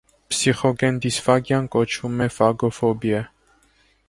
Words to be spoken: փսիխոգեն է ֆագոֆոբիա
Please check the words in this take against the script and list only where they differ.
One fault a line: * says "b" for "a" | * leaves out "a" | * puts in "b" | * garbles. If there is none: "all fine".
* puts in "դիսֆագիան կոչվում"